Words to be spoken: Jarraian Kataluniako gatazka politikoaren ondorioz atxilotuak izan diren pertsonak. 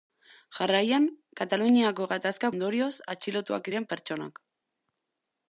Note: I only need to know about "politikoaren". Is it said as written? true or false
false